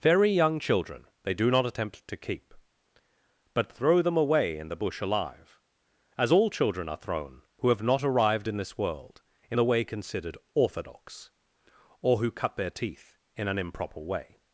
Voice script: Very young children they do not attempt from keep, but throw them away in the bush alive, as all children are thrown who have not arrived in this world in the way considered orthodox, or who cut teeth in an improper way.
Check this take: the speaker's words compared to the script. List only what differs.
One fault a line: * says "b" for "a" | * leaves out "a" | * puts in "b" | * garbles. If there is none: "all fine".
* says "to" for "from"
* puts in "their"